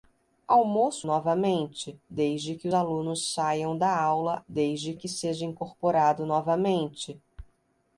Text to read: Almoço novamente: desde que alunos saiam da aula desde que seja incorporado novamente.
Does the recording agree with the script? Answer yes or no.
yes